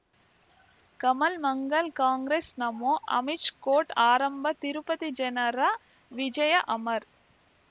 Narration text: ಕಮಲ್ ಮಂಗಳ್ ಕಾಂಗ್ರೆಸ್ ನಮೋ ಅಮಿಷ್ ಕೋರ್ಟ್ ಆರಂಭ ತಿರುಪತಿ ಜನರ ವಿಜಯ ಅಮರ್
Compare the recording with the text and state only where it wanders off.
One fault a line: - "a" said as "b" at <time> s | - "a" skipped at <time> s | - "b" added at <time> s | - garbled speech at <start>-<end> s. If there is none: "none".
none